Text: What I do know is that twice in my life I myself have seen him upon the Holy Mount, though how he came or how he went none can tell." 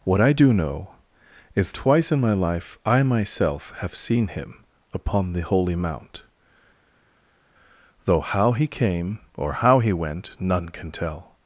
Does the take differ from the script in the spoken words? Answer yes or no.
yes